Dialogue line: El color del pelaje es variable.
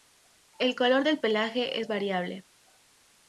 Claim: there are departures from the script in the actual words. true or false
false